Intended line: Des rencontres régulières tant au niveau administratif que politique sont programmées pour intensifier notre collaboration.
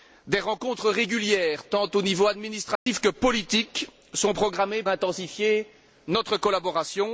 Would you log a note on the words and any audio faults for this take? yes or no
yes